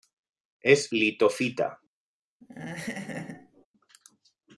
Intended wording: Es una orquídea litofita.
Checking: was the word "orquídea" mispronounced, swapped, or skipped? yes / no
yes